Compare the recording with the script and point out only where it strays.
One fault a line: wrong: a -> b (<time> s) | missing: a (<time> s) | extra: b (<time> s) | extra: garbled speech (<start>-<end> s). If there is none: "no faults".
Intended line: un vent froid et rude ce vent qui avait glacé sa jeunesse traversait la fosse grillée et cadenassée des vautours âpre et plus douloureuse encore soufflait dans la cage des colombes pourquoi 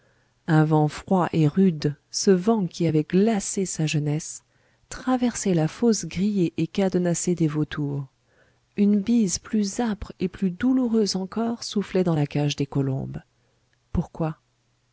extra: une bise plus (8.8 s)